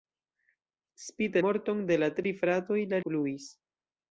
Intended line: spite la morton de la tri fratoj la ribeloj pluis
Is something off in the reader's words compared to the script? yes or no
yes